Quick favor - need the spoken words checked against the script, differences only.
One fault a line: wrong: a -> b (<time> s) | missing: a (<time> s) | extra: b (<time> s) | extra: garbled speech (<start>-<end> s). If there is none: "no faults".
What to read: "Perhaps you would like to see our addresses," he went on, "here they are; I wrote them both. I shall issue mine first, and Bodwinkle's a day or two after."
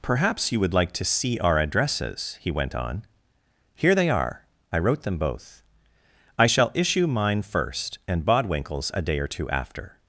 no faults